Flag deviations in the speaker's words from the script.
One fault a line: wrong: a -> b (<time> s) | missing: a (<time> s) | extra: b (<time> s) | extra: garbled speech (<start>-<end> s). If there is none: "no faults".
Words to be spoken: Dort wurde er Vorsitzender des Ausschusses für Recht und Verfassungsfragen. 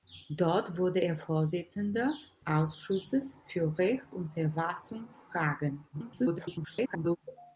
missing: des (2.1 s)
extra: garbled speech (5.9-7.2 s)